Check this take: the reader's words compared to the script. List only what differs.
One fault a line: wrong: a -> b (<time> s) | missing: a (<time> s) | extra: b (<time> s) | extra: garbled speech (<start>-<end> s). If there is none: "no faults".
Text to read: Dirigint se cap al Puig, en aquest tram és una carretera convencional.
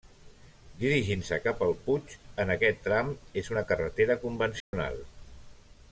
no faults